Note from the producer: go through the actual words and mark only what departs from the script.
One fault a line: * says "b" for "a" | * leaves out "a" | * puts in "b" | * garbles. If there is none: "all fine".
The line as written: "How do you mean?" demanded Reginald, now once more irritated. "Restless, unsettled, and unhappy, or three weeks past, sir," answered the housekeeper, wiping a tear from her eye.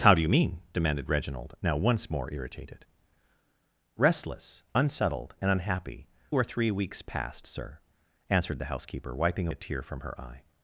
all fine